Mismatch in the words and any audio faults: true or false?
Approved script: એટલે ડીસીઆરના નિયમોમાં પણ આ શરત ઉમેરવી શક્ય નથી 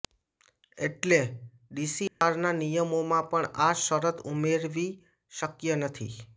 true